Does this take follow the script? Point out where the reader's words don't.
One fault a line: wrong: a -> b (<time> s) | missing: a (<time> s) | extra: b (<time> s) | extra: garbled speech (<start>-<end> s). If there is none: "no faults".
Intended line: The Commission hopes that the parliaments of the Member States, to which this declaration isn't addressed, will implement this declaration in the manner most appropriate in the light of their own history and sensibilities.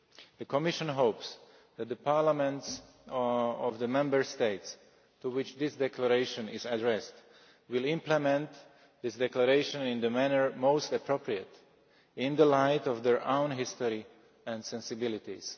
wrong: isn't -> is (6.5 s)